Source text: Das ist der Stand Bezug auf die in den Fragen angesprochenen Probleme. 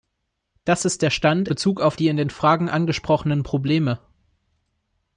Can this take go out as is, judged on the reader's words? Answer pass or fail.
pass